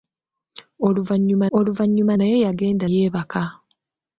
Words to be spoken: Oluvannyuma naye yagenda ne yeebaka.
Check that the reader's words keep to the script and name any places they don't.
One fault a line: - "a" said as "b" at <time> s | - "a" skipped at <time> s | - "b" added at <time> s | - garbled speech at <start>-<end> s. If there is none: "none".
- "oluvannyuma" added at 1.6 s
- "ne" skipped at 2.9 s